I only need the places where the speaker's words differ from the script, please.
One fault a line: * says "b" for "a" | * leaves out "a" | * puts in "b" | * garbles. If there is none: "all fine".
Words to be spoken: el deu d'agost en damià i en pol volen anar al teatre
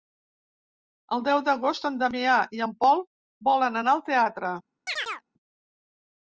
all fine